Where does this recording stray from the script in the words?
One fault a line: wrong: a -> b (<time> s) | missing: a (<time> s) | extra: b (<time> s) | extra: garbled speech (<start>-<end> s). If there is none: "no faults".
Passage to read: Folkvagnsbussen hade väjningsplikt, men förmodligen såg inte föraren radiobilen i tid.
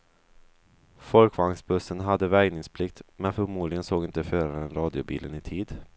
no faults